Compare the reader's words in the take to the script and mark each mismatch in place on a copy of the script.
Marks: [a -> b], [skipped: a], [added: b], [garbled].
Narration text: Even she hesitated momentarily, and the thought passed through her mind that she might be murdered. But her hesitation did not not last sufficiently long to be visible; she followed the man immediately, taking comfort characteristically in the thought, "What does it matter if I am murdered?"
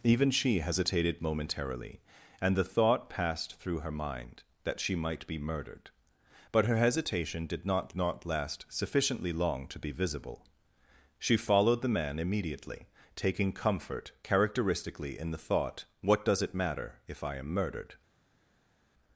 Even she hesitated momentarily, and the thought passed through her mind that she might be murdered. But her hesitation did not not last sufficiently long to be visible; she followed the man immediately, taking comfort characteristically in the thought, "What does it matter if I am murdered?"